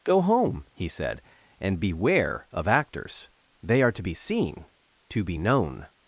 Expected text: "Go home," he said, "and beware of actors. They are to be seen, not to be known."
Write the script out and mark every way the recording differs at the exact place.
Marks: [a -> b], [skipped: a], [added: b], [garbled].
"Go home," he said, "and beware of actors. They are to be seen, [skipped: not] to be known."